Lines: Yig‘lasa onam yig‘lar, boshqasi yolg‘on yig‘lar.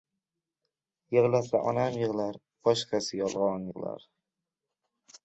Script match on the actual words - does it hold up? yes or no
yes